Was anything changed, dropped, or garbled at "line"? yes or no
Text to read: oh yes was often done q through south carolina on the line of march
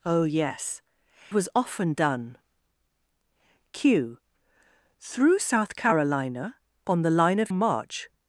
no